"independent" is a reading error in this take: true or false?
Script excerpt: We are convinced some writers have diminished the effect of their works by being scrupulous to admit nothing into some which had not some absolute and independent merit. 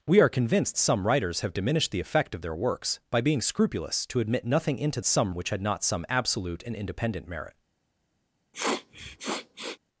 false